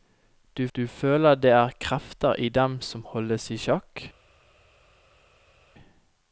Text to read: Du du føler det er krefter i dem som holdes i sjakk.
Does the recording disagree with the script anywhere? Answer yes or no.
no